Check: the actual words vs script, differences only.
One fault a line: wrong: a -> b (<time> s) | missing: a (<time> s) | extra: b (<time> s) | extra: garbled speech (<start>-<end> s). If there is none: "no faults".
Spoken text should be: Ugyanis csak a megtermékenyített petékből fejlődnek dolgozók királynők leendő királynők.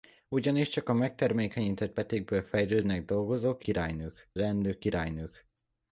no faults